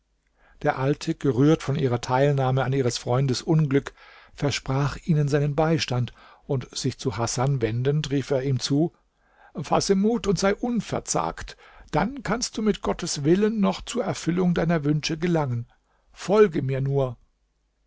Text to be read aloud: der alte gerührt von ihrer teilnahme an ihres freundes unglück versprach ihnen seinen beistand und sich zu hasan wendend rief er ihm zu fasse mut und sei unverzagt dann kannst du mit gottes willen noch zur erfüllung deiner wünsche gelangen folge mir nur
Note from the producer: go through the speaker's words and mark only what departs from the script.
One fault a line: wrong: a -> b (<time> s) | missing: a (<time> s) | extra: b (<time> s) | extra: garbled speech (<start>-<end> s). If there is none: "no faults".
no faults